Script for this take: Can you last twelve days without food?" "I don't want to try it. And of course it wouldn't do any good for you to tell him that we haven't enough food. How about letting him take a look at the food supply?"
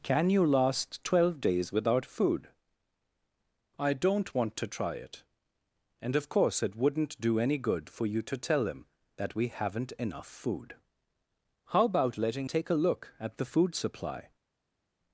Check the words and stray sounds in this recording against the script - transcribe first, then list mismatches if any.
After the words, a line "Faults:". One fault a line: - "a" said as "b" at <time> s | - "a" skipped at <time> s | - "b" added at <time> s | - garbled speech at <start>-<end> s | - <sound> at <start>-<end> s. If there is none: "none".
Can you last twelve days without food?" "I don't want to try it. And of course it wouldn't do any good for you to tell him that we haven't enough food. How about letting take a look at the food supply?"
Faults:
- "him" skipped at 12.5 s